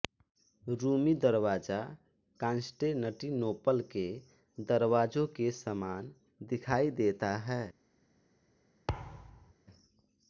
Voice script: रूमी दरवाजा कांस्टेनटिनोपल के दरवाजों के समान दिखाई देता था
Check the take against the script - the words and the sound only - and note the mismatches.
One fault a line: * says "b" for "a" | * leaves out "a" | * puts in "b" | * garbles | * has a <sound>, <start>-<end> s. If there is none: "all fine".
* says "है" for "था"
* has a thud, 8.9-9.5 s